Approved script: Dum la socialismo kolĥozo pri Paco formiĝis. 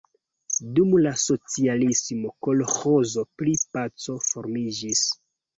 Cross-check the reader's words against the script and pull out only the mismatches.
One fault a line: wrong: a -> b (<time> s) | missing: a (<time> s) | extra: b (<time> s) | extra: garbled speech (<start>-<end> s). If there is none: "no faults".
no faults